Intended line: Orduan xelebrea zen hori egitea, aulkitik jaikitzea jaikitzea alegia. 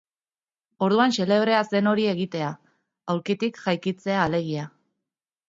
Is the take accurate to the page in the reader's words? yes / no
no